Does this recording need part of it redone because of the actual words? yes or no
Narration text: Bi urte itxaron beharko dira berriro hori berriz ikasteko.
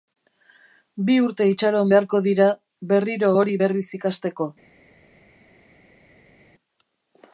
no